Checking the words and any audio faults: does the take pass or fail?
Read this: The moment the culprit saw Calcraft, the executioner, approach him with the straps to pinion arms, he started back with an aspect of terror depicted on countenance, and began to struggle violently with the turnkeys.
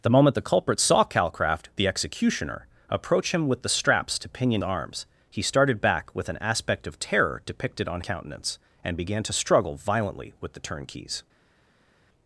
pass